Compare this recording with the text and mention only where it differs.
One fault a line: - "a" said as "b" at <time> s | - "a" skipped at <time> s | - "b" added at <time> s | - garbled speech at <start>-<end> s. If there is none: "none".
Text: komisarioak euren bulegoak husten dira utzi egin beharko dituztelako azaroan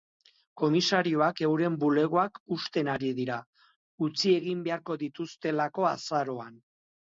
- "ari" added at 3.0 s